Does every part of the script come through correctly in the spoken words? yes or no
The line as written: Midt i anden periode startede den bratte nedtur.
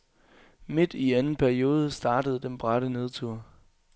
yes